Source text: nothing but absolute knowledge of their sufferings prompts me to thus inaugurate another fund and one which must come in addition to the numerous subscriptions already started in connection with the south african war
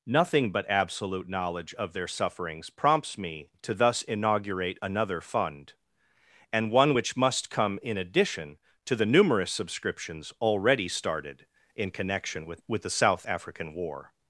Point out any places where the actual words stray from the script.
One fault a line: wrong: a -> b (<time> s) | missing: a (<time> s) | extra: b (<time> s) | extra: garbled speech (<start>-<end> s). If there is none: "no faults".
extra: with (12.7 s)